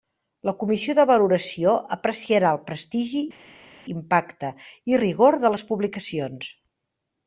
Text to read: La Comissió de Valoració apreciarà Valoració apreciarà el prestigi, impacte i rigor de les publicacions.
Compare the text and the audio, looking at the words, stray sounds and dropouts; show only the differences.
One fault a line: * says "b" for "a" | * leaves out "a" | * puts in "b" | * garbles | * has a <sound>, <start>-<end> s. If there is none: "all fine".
* leaves out "Valoració apreciarà"